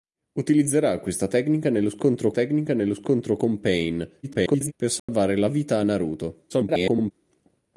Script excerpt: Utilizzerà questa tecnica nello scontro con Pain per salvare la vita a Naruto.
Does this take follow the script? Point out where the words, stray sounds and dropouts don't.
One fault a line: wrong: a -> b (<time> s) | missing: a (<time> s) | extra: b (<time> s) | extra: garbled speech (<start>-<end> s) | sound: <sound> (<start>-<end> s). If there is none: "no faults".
extra: tecnica nello scontro (2.3 s)
extra: garbled speech (4.2-4.7 s)
sound: dropout (5.0-5.1 s)
extra: garbled speech (6.5-7.1 s)